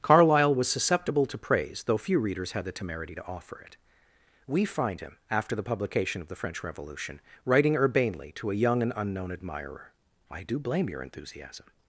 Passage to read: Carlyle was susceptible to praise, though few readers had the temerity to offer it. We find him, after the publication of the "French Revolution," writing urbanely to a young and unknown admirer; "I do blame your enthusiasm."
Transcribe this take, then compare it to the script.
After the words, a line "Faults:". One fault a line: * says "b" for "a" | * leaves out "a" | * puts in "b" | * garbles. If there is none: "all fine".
Carlyle was susceptible to praise, though few readers had the temerity to offer it. We find him, after the publication of the "French Revolution," writing urbanely to a young and unknown admirer; "I do blame your enthusiasm."
Faults:
all fine